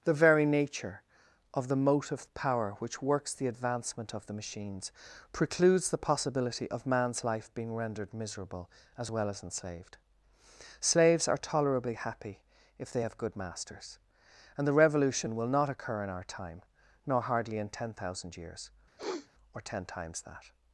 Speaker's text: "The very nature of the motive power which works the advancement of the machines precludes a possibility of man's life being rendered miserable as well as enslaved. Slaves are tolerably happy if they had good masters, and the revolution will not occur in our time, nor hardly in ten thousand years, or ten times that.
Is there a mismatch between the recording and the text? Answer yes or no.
yes